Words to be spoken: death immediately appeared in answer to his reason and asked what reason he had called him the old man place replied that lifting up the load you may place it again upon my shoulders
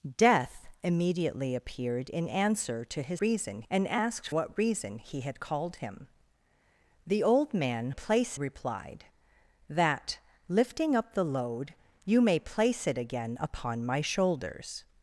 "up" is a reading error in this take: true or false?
false